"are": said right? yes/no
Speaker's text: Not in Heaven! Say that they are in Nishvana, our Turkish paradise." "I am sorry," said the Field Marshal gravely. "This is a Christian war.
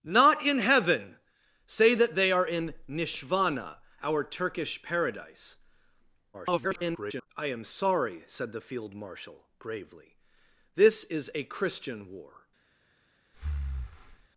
yes